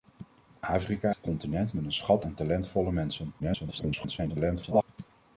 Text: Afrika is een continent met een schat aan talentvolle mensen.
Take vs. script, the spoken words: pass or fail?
fail